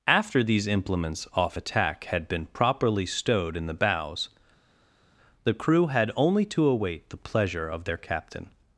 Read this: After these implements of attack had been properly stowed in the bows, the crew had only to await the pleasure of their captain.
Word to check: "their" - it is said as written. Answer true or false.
true